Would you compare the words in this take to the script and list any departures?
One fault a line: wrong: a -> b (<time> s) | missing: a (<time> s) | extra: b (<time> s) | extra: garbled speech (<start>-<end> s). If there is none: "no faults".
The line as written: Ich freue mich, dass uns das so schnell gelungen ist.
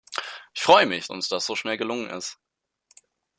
missing: dass (1.1 s)